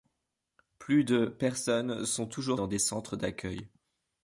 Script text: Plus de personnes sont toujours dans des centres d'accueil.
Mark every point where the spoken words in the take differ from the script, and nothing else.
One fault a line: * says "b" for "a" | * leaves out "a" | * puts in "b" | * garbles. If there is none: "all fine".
all fine